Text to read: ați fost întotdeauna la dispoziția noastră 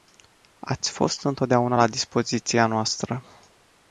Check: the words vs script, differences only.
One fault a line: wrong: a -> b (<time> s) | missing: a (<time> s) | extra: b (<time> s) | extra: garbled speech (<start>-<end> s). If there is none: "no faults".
no faults